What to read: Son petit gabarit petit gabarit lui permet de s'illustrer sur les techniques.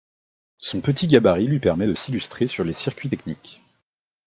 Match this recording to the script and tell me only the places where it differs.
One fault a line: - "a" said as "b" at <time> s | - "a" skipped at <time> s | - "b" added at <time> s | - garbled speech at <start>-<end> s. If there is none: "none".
- "petit gabarit" skipped at 1.4 s
- "circuits" added at 2.7 s